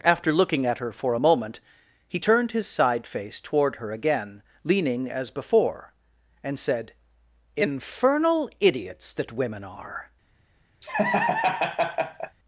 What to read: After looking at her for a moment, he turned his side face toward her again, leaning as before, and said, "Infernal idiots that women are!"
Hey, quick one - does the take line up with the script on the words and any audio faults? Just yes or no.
no